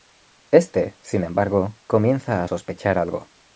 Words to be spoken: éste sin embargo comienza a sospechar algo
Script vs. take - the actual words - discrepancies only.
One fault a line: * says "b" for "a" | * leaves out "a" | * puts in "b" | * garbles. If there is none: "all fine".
all fine